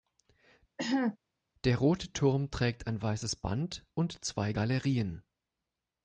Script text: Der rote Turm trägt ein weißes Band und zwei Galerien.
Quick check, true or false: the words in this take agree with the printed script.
true